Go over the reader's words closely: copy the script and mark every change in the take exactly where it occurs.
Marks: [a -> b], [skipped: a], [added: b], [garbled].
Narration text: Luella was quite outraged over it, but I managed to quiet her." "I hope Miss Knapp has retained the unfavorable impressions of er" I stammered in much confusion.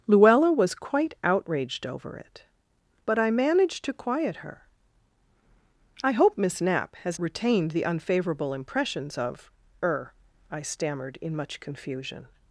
Luella was quite outraged over it, but I managed to quiet her." "I hope Miss Knapp has retained the unfavorable impressions of er" I stammered in much confusion.